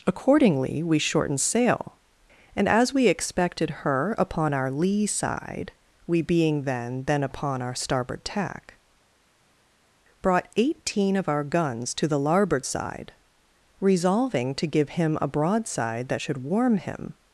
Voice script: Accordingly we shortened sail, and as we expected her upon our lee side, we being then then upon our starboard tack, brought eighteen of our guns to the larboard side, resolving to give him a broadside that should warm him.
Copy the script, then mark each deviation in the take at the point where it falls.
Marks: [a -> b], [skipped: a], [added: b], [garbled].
Accordingly we shortened sail, and as we expected her upon our lee side, we being then then upon our starboard tack, brought eighteen of our guns to the larboard side, resolving to give him a broadside that should warm him.